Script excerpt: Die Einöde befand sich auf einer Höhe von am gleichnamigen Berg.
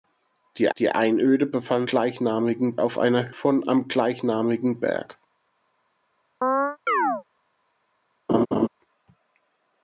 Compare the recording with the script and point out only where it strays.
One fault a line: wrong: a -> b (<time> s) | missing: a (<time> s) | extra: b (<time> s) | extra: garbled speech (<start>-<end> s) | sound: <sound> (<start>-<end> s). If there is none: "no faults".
extra: die (0.8 s)
wrong: sich -> gleichnamigen (1.9 s)
missing: Höhe (3.3 s)
sound: chirp (6.4-7.2 s)
sound: laugh (8.3-8.7 s)